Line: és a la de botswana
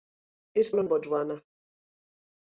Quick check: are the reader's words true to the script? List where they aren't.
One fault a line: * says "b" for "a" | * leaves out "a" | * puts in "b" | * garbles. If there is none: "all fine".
all fine